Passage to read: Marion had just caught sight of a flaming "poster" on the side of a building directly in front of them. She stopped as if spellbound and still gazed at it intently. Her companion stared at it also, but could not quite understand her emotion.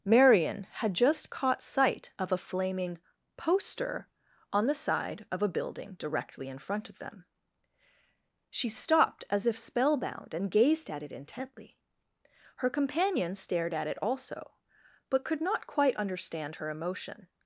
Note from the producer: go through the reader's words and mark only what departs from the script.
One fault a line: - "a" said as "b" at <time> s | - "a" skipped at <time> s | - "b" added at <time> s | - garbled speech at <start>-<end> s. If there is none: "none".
- "still" skipped at 10.5 s